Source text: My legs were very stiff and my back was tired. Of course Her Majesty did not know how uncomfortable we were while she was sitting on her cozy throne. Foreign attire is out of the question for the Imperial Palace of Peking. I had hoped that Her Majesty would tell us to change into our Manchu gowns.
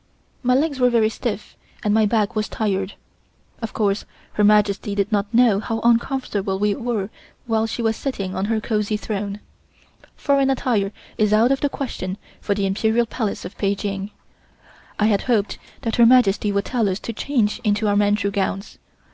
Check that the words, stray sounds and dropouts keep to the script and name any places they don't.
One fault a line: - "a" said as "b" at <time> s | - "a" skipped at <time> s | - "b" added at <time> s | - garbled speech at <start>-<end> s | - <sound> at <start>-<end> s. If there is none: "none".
none